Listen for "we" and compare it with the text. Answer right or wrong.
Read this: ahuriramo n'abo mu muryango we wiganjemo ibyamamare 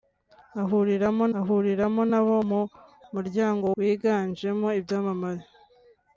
wrong